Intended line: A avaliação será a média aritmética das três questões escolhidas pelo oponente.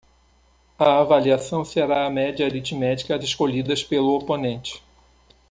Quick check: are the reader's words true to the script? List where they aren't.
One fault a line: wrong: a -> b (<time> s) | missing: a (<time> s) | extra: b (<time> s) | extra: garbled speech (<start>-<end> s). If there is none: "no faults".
missing: das três questões (3.2 s)